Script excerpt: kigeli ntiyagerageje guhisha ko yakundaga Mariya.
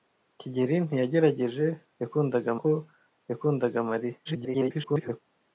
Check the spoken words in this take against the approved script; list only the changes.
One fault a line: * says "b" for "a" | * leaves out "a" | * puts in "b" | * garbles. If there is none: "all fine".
* says "yakundaga" for "guhisha"
* garbles